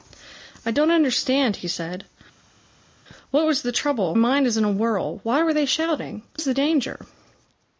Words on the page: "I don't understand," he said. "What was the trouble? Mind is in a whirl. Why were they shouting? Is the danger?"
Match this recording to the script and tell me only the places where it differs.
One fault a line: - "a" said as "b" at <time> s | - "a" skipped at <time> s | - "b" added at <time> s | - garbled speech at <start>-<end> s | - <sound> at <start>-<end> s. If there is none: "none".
none